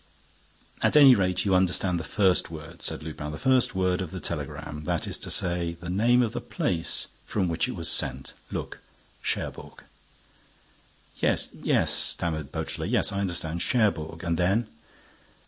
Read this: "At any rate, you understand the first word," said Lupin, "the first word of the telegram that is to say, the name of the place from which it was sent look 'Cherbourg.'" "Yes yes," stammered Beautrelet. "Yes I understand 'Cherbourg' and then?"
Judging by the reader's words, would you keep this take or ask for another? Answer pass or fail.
pass